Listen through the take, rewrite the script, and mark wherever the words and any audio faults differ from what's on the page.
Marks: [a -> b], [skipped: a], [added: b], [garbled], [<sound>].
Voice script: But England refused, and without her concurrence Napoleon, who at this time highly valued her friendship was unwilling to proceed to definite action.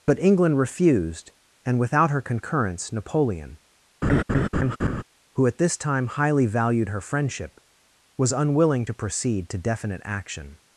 But England refused, and without her concurrence Napoleon, [laugh] who at this time highly valued her friendship was unwilling to proceed to definite action.